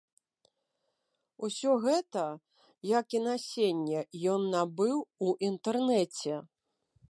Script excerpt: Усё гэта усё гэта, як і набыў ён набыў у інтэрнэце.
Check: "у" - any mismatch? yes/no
no